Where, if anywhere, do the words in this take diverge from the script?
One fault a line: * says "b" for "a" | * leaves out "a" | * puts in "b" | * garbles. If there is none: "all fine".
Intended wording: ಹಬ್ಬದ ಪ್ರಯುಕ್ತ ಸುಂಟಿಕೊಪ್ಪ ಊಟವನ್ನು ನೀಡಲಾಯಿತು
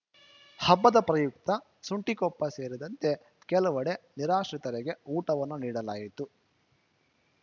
* puts in "ಸೇರಿದಂತೆ ಕೆಲವೆಡೆ ನಿರಾಶ್ರಿತರಿಗೆ"